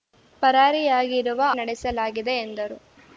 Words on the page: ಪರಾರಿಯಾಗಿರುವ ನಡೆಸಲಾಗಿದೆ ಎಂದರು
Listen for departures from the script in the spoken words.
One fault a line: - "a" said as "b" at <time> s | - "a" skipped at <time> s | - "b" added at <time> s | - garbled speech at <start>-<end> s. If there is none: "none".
none